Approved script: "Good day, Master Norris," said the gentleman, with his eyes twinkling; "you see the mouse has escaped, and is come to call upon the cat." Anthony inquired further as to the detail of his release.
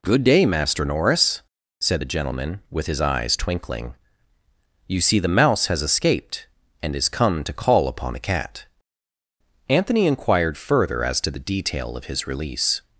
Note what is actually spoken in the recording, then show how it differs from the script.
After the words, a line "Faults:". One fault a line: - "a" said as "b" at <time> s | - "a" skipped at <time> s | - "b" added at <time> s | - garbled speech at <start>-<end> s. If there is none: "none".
"Good day, Master Norris," said the gentleman, with his eyes twinkling; "you see the mouse has escaped, and is come to call upon the cat." Anthony inquired further as to the detail of his release.
Faults:
none